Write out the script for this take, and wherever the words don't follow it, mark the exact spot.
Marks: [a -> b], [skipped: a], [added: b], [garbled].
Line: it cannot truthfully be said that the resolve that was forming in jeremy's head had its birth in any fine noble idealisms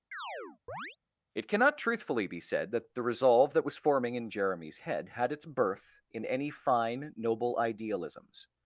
it cannot truthfully be said that the resolve that was forming in jeremy's head had its birth in any fine noble idealisms